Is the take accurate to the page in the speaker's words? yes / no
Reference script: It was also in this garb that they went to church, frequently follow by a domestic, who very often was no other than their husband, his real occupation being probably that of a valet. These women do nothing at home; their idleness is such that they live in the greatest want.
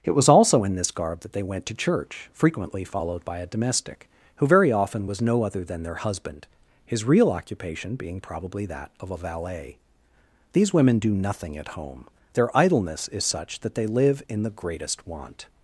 no